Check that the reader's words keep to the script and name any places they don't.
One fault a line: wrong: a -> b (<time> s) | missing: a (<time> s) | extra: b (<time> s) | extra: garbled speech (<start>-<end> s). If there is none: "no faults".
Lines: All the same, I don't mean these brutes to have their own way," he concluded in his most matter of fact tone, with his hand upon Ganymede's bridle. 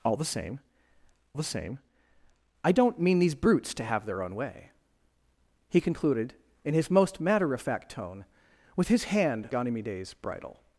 extra: the same (1.3 s)
missing: upon (9.5 s)